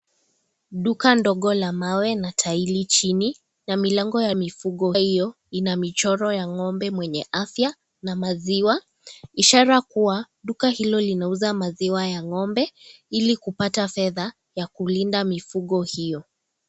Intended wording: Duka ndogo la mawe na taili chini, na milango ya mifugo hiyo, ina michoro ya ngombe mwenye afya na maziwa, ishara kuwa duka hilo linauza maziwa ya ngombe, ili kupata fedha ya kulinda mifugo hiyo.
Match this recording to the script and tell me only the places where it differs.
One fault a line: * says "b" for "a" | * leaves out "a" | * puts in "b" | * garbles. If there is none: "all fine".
all fine